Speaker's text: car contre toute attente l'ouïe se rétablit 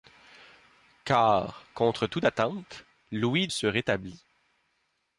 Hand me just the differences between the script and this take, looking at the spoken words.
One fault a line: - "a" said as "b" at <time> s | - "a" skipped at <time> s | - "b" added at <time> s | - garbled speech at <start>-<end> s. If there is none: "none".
none